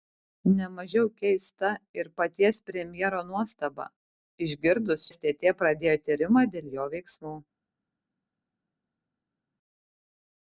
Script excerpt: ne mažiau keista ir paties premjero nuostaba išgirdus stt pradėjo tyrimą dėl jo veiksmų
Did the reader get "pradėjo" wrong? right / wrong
right